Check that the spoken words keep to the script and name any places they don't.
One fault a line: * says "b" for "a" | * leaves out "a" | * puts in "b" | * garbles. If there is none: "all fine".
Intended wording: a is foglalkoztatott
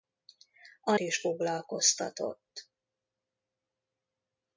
all fine